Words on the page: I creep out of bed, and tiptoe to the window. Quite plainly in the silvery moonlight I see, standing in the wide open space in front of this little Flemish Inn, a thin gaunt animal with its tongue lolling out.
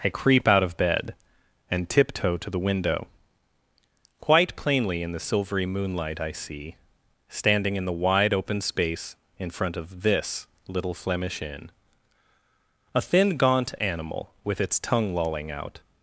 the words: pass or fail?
pass